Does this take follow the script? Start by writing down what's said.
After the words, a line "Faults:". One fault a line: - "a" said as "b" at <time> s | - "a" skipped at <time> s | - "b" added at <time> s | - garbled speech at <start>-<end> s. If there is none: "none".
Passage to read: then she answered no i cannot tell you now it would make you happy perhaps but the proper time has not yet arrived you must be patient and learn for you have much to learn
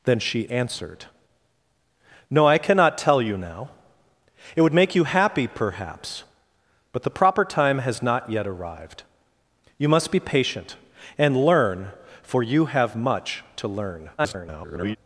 then she answered no i cannot tell you now it would make you happy perhaps but the proper time has not yet arrived you must be patient and learn for you have much to learn [garbled]
Faults:
- garbled speech at 14.2-15.0 s